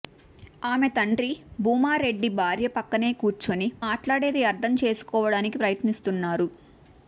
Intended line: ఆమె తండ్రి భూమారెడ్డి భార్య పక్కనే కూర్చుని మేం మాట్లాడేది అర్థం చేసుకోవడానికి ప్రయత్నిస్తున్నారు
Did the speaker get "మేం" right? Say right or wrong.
wrong